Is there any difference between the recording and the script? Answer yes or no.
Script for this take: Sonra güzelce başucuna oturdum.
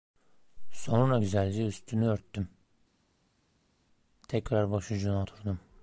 yes